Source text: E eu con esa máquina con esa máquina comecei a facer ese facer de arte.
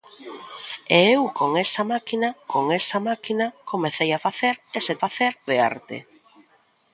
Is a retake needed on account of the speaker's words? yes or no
no